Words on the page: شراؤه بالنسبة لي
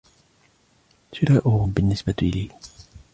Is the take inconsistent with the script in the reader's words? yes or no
no